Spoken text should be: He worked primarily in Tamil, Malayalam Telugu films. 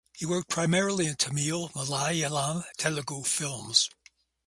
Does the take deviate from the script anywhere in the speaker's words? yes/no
no